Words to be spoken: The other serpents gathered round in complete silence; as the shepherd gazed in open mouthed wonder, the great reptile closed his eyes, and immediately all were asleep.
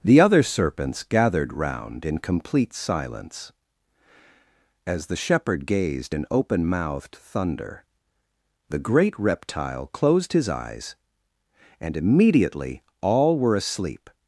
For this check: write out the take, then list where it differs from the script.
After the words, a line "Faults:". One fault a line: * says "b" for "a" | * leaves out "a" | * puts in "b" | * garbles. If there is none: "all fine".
The other serpents gathered round in complete silence; as the shepherd gazed in open mouthed thunder, the great reptile closed his eyes, and immediately all were asleep.
Faults:
* says "thunder" for "wonder"